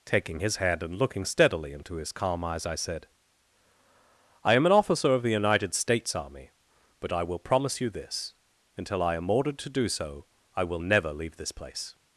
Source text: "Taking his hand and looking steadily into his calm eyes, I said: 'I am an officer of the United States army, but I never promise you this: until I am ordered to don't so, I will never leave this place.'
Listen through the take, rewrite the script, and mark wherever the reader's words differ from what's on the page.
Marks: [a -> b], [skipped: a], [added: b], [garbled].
"Taking his hand and looking steadily into his calm eyes, I said: 'I am an officer of the United States army, but I [never -> will] promise you this: until I am ordered to [don't -> do] so, I will never leave this place.'